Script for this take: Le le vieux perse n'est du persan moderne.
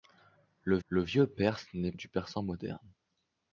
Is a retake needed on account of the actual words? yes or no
no